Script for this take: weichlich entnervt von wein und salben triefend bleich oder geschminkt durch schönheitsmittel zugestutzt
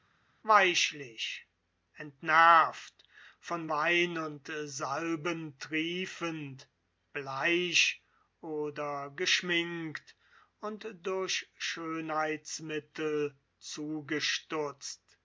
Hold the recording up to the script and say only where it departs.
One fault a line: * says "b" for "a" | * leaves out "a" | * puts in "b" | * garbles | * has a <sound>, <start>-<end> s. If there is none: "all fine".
* puts in "und"